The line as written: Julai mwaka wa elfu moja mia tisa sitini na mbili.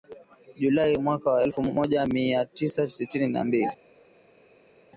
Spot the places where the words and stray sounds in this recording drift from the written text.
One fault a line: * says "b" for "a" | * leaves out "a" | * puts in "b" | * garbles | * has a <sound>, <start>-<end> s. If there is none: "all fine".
all fine